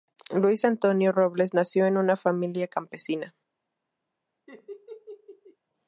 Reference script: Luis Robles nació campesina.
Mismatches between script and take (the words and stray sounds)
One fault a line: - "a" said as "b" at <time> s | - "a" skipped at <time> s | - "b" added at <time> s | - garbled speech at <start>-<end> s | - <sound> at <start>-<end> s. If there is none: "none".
- "Antonio" added at 0.7 s
- "en una familia" added at 1.9 s
- laugh at 4.5-5.6 s